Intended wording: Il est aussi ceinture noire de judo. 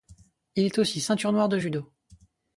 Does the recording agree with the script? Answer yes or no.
yes